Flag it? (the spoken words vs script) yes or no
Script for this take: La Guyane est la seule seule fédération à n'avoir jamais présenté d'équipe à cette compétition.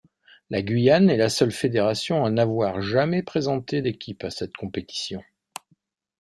yes